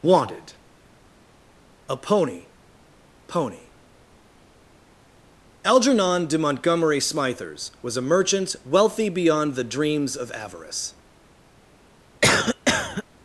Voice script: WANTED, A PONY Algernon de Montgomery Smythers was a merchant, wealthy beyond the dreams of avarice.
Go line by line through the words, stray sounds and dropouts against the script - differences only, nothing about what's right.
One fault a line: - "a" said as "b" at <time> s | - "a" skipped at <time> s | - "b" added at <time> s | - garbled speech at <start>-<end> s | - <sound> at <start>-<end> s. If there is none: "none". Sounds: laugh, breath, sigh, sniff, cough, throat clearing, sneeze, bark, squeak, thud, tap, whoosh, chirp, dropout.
- "PONY" added at 3.3 s
- cough at 12.2-13.0 s